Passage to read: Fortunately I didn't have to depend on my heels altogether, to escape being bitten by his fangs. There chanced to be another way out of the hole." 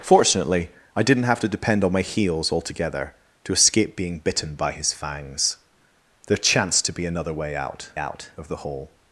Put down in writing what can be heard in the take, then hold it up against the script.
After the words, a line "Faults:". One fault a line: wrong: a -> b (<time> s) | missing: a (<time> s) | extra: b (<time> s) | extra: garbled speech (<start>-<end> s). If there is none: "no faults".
Fortunately I didn't have to depend on my heels altogether, to escape being bitten by his fangs. There chanced to be another way out out of the hole."
Faults:
extra: out (8.0 s)